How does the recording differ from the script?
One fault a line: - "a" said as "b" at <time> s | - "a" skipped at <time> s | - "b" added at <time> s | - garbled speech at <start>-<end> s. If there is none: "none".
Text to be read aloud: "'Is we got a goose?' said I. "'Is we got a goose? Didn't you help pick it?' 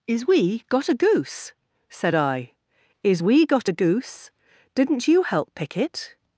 none